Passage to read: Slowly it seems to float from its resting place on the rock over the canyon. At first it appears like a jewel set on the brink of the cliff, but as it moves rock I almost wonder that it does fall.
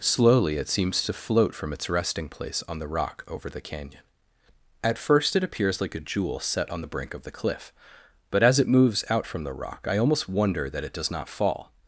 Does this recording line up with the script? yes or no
no